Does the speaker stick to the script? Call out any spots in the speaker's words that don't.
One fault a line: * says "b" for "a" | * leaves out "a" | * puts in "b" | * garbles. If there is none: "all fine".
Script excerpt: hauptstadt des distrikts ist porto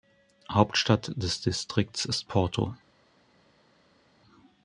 all fine